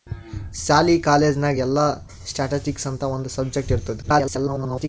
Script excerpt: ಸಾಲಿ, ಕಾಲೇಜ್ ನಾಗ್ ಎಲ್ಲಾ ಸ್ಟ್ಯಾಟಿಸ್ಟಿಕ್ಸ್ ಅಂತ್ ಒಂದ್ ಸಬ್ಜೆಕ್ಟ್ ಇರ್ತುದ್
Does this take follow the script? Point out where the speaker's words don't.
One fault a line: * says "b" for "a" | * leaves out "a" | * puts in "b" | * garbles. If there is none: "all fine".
* garbles